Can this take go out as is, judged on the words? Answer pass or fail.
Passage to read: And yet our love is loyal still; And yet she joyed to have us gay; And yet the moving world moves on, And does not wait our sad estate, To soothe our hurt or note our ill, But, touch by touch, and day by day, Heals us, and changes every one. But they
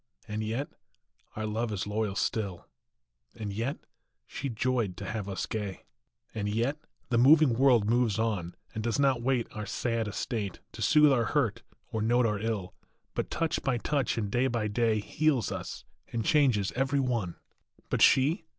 fail